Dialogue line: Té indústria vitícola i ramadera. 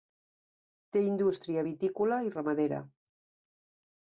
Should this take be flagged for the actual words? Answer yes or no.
no